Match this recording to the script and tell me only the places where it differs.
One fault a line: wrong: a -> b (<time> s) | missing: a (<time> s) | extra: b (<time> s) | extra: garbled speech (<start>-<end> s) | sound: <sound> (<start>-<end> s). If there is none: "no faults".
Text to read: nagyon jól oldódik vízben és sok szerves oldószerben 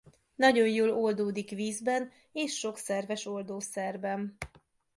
no faults